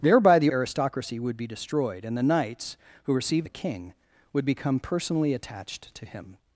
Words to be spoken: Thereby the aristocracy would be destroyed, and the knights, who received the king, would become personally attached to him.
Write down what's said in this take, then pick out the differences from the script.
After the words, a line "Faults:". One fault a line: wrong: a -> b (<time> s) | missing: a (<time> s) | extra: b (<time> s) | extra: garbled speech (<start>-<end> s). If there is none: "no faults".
Thereby the aristocracy would be destroyed, and the knights, who received the king, would become personally attached to him.
Faults:
no faults